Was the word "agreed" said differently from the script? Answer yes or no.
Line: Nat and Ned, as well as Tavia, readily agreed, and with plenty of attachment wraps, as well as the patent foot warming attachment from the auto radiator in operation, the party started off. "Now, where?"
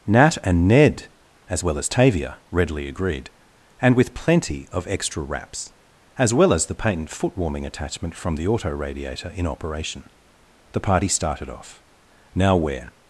no